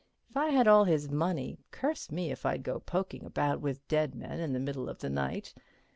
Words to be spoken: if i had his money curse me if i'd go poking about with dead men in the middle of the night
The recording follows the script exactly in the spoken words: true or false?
false